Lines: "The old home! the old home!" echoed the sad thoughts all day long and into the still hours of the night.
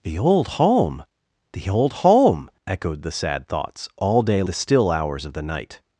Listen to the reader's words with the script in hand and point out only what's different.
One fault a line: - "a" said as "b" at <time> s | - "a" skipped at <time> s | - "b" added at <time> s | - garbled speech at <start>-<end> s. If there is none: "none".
- "long and into" skipped at 4.4 s